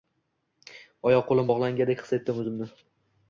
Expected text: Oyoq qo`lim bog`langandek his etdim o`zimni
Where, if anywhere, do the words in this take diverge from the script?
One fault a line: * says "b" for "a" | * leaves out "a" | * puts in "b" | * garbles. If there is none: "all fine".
all fine